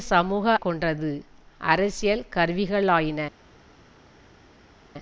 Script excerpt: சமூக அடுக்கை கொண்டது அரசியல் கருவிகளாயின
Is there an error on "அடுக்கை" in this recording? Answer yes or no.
yes